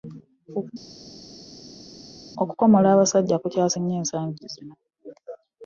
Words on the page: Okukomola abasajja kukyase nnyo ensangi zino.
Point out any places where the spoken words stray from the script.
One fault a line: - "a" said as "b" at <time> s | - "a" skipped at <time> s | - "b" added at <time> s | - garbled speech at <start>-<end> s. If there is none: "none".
none